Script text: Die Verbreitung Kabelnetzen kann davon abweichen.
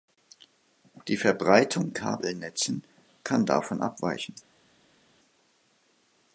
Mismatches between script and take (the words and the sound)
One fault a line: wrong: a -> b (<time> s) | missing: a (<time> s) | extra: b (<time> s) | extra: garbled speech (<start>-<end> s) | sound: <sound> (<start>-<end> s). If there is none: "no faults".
no faults